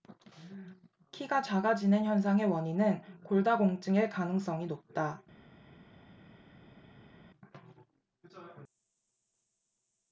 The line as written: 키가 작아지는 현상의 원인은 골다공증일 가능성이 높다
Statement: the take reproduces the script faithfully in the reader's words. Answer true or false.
true